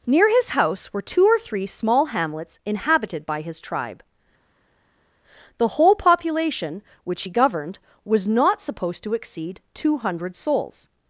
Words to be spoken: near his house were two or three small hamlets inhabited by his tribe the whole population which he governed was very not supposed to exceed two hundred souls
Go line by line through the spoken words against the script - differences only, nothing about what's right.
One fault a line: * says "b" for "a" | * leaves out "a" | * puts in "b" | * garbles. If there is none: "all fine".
* leaves out "very"